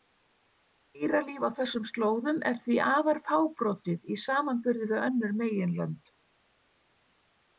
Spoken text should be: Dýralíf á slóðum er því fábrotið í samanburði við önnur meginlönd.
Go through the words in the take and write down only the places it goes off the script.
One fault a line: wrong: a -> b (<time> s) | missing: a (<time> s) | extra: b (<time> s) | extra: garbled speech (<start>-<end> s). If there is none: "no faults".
extra: þessum (1.6 s)
extra: afar (2.9 s)